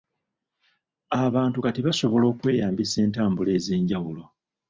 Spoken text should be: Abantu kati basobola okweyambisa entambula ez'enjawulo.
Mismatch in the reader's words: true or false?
false